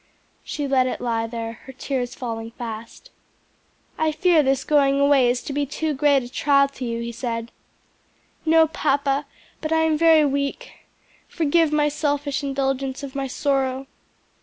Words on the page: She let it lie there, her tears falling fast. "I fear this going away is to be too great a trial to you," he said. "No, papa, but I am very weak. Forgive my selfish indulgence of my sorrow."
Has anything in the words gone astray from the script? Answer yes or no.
no